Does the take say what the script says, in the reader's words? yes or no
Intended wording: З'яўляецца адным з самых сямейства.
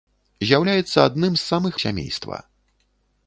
yes